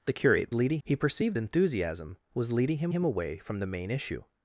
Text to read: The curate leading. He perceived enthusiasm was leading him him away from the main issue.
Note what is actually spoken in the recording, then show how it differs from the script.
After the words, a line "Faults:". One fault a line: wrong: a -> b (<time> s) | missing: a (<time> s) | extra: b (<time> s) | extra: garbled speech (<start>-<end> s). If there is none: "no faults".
The curate leading. He perceived enthusiasm was leading him him away from the main issue.
Faults:
no faults